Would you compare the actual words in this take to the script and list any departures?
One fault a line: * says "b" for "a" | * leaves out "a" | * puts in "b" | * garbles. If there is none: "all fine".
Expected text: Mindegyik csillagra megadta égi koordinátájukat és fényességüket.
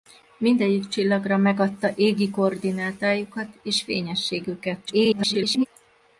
* garbles